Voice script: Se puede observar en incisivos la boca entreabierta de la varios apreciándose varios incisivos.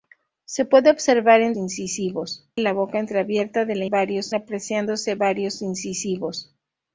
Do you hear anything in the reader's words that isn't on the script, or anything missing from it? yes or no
no